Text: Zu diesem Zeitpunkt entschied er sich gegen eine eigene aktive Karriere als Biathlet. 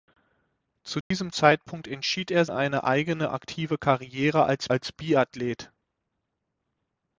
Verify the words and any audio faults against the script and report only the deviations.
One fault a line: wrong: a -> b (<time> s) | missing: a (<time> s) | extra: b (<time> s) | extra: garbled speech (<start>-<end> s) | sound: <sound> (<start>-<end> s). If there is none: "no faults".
sound: dropout (1.0-1.1 s)
missing: sich gegen (2.5 s)
extra: als (4.7 s)